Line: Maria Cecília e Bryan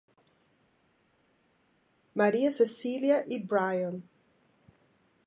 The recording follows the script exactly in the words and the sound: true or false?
true